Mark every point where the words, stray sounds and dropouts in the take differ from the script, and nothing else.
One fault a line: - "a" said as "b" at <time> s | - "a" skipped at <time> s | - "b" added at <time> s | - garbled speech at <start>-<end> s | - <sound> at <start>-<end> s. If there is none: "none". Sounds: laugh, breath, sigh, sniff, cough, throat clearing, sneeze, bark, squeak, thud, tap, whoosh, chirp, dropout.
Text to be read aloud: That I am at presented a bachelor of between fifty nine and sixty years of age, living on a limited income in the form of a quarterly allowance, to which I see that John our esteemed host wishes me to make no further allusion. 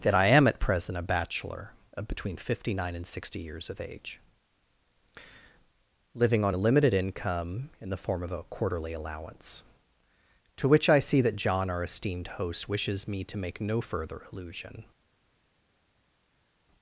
- "presented" said as "present" at 0.6 s